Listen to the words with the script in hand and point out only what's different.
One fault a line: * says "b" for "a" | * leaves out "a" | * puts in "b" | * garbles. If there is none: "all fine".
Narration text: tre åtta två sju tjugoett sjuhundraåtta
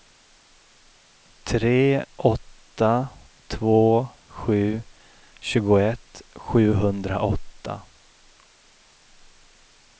all fine